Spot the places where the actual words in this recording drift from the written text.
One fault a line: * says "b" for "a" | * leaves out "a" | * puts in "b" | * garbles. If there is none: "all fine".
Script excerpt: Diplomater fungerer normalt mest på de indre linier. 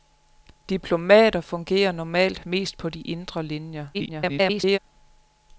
* garbles